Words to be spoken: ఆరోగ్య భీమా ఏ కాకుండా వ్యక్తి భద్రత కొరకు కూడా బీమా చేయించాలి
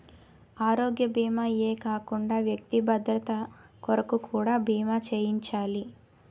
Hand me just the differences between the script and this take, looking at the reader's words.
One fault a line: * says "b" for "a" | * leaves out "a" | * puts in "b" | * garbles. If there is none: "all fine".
all fine